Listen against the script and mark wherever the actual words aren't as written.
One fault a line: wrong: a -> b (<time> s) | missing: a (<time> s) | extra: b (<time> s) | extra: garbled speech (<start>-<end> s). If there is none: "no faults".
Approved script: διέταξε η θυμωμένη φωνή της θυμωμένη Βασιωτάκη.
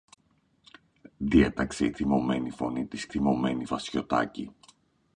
no faults